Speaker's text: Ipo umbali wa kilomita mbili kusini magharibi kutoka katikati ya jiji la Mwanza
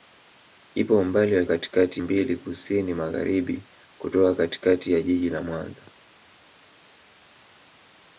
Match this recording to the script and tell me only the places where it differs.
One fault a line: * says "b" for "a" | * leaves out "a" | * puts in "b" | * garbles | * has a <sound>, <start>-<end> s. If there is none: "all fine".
* says "katikati" for "kilomita"